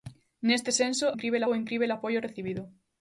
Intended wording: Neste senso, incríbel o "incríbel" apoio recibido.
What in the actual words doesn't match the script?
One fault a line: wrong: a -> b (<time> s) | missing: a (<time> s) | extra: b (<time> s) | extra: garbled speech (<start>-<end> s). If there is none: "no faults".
no faults